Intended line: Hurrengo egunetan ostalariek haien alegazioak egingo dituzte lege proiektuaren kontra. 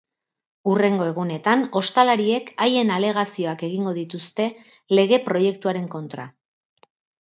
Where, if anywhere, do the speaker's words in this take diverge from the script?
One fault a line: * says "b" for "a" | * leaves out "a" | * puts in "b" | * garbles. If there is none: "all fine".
all fine